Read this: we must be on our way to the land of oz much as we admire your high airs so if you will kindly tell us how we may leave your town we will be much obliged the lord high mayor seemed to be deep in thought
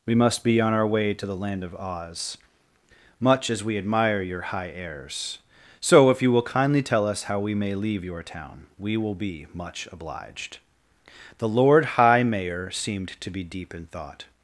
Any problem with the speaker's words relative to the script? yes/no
no